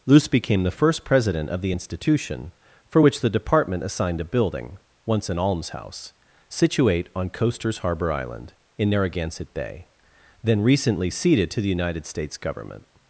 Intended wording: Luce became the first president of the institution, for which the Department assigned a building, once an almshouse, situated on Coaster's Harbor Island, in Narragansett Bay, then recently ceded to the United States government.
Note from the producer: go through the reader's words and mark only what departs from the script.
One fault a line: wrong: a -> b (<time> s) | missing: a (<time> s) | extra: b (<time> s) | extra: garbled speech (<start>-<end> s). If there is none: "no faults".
wrong: situated -> situate (6.5 s)